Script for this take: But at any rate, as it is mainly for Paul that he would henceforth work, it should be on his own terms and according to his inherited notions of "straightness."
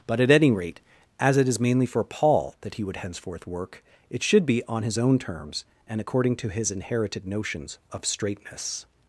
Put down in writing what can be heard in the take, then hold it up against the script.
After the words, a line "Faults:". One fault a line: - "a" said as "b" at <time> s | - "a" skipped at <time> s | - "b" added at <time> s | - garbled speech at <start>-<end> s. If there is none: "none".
But at any rate, as it is mainly for Paul that he would henceforth work, it should be on his own terms and according to his inherited notions of "straightness."
Faults:
none